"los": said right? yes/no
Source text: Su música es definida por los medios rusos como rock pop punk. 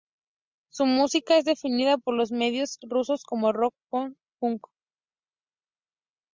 yes